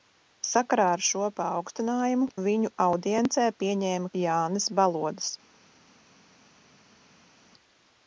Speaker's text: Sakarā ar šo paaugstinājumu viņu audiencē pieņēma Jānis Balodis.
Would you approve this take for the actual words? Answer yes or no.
yes